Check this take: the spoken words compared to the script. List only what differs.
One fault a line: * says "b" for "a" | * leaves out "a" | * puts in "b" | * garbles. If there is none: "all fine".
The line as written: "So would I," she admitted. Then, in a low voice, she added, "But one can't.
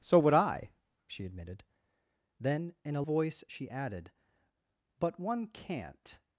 * leaves out "low"